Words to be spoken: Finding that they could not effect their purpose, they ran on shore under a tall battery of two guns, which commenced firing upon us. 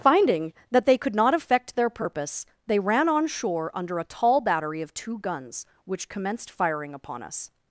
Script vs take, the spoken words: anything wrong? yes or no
no